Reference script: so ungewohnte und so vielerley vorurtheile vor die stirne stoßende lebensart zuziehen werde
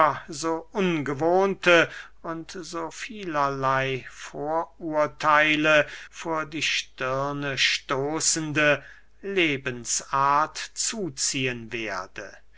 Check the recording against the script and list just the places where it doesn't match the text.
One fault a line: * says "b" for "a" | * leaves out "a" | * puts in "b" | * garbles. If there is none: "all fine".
all fine